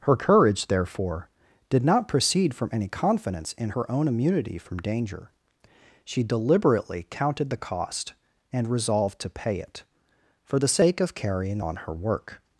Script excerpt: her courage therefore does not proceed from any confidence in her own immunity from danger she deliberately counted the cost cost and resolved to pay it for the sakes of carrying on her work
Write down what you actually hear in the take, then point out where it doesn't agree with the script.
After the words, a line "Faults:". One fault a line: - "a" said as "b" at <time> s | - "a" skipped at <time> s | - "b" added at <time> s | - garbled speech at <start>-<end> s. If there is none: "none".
her courage therefore did not proceed from any confidence in her own immunity from danger she deliberately counted the cost and resolved to pay it for the sake of carrying on her work
Faults:
- "does" said as "did" at 1.7 s
- "cost" skipped at 8.1 s
- "sakes" said as "sake" at 10.7 s